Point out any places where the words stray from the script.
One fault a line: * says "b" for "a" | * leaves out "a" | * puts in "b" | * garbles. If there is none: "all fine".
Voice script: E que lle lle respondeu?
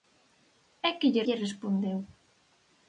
all fine